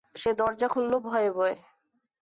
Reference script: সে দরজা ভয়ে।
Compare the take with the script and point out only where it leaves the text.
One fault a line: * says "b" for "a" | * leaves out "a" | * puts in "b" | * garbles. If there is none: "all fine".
* puts in "খুলল ভয়ে"